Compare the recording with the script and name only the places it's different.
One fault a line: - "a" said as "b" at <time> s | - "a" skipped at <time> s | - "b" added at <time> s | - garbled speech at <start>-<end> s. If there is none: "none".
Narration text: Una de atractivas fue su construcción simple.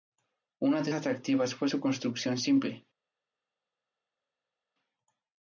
none